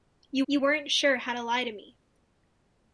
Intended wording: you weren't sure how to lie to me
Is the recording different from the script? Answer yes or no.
yes